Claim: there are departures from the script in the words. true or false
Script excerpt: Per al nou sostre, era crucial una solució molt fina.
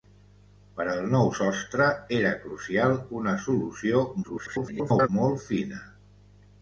true